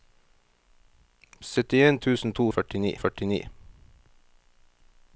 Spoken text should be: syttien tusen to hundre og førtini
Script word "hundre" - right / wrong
wrong